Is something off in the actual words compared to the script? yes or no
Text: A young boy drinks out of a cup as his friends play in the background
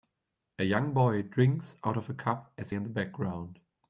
yes